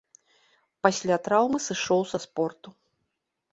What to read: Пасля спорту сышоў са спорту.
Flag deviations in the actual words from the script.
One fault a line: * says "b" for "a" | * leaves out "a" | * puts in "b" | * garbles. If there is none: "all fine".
* says "траўмы" for "спорту"